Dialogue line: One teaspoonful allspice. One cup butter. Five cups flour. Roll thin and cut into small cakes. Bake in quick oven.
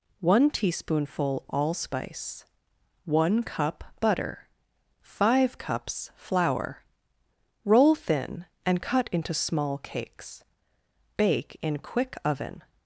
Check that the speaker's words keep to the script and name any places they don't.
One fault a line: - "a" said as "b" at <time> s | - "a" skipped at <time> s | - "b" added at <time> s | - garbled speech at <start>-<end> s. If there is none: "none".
none